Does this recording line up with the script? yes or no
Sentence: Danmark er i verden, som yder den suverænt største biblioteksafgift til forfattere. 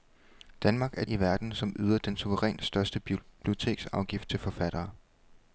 yes